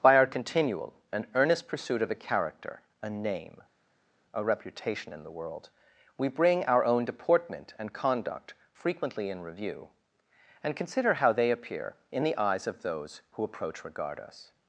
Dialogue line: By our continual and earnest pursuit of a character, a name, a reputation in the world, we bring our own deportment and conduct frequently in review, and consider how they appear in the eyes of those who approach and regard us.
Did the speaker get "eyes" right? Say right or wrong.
right